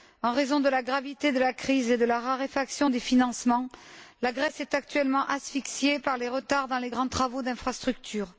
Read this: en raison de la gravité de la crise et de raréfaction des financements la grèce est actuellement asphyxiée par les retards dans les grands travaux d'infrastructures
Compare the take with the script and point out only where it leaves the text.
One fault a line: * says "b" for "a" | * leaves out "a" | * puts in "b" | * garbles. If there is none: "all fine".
* puts in "la"